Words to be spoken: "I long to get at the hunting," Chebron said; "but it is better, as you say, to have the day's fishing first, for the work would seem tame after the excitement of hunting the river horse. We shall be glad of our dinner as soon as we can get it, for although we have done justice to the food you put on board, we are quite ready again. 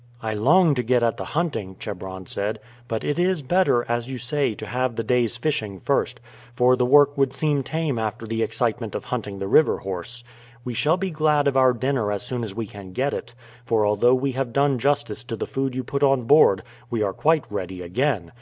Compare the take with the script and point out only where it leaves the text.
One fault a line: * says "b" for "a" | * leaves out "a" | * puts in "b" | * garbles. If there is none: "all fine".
all fine